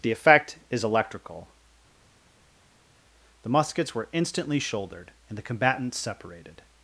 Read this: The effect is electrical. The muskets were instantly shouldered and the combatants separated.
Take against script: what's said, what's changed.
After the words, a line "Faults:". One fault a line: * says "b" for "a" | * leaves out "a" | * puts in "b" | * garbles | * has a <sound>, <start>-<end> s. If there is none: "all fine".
The effect is electrical. The muskets were instantly shouldered and the combatants separated.
Faults:
all fine